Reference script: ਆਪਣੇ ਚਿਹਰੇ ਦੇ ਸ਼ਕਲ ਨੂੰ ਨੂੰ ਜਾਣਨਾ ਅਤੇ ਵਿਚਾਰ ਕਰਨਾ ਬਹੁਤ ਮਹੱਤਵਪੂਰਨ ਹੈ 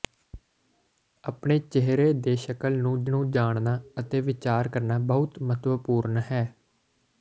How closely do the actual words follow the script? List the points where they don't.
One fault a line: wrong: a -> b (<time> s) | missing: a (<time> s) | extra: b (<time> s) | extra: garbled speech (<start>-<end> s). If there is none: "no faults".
no faults